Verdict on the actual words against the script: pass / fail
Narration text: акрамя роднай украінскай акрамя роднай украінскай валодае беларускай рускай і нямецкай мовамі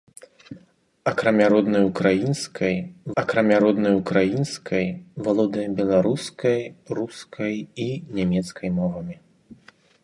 pass